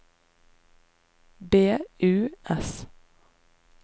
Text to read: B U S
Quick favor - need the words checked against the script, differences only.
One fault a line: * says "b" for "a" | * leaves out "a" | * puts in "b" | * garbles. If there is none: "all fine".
all fine